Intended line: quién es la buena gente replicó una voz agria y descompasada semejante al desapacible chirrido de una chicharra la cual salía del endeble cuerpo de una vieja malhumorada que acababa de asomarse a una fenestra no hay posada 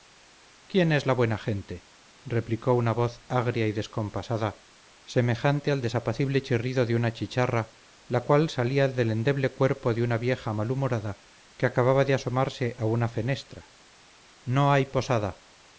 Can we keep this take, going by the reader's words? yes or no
yes